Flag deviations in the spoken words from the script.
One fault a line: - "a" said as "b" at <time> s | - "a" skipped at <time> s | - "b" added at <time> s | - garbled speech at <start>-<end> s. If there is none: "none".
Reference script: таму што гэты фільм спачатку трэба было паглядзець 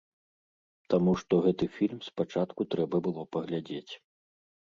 none